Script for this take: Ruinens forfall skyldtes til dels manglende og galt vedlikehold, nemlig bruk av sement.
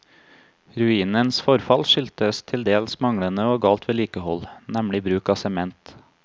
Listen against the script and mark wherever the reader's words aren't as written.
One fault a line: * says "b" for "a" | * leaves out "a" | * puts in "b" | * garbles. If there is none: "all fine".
all fine